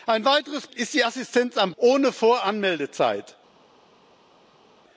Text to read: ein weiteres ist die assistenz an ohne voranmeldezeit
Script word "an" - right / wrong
right